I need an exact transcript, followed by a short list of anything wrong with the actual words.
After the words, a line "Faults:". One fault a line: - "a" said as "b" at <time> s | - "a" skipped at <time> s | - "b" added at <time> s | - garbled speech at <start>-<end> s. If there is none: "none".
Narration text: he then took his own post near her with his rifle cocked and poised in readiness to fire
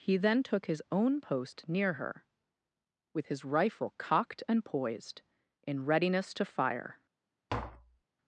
he then took his own post near her with his rifle cocked and poised in readiness to fire
Faults:
none